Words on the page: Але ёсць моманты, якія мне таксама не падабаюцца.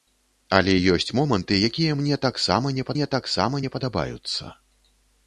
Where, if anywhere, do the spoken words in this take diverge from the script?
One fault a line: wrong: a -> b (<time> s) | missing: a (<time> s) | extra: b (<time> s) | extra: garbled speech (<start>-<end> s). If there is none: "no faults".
extra: мне таксама не (2.9 s)